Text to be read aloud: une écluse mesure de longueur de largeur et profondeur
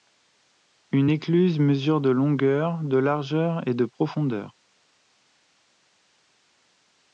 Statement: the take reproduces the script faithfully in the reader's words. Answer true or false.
false